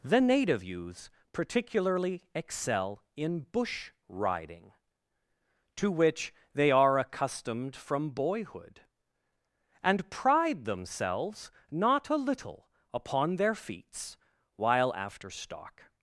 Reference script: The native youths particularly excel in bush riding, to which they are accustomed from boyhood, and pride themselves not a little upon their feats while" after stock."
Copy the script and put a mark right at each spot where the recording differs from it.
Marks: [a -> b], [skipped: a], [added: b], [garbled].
The native youths particularly excel in bush riding, to which they are accustomed from boyhood, and pride themselves not a little upon their feats while" after stock."